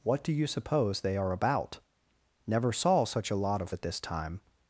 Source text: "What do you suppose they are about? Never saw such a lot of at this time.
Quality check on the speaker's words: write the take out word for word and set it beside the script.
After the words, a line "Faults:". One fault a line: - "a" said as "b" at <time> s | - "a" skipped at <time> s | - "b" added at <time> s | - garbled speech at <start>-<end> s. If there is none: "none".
"What do you suppose they are about? Never saw such a lot of at this time.
Faults:
none